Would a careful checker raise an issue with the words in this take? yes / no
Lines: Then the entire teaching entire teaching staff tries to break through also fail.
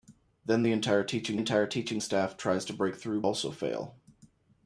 no